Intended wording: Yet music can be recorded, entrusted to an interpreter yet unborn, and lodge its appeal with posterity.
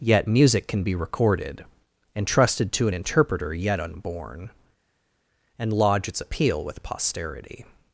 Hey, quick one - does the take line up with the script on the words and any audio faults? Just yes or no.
yes